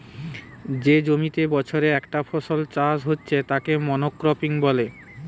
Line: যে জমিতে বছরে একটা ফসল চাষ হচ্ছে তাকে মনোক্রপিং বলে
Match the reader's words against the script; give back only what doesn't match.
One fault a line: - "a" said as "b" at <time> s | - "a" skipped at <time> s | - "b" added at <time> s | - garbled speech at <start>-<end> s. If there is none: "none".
none